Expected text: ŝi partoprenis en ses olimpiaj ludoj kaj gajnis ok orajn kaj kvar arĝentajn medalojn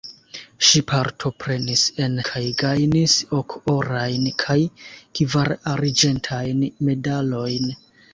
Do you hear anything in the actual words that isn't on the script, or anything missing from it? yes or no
yes